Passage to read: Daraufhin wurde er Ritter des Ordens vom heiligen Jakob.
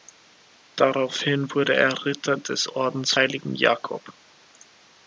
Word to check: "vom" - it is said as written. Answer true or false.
false